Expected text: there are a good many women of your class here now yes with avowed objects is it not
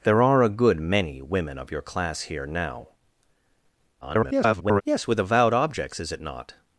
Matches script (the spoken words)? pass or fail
fail